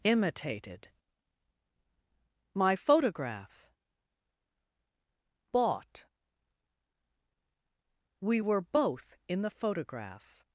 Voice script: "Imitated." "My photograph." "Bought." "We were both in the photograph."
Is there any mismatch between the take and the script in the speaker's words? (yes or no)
no